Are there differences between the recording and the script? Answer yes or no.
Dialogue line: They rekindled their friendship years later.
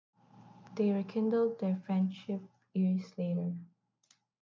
no